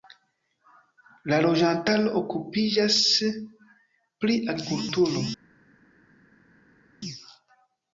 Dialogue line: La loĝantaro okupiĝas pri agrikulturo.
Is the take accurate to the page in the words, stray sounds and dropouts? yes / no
yes